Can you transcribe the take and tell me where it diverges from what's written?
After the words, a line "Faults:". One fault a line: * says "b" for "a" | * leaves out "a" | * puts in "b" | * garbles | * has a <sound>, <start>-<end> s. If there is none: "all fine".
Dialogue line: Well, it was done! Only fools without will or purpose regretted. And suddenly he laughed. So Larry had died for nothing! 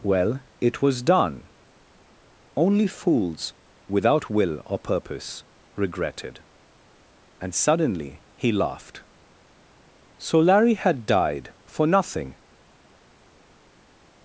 Well, it was done! Only fools without will or purpose regretted. And suddenly he laughed. So Larry had died for nothing!
Faults:
all fine